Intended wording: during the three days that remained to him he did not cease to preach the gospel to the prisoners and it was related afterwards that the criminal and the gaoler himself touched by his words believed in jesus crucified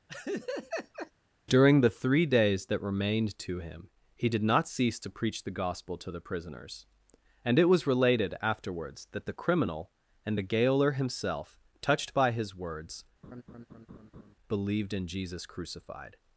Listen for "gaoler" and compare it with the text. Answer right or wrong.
right